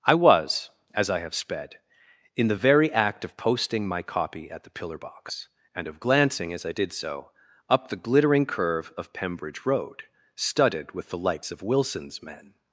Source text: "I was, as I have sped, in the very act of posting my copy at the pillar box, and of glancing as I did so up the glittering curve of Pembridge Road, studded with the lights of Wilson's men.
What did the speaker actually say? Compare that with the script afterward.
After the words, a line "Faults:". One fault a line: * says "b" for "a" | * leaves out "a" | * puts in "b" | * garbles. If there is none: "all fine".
"I was, as I have sped, in the very act of posting my copy at the pillar box, and of glancing as I did so up the glittering curve of Pembridge Road, studded with the lights of Wilson's men.
Faults:
all fine